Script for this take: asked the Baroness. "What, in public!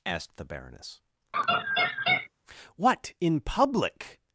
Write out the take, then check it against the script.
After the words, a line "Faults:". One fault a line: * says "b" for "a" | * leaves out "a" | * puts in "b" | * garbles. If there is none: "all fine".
asked the Baroness. "What, in public!
Faults:
all fine